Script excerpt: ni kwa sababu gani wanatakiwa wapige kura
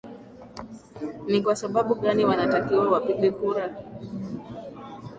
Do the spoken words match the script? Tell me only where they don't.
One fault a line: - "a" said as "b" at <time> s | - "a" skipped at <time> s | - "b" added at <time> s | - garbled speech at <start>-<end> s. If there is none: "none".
none